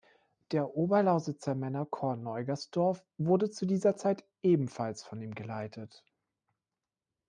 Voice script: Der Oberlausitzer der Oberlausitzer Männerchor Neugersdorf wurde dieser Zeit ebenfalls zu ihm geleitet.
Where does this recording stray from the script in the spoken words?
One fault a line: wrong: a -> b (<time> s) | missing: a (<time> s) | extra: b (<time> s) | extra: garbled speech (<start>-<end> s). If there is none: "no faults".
missing: der Oberlausitzer (1.5 s)
extra: zu (3.5 s)
wrong: zu -> von (5.0 s)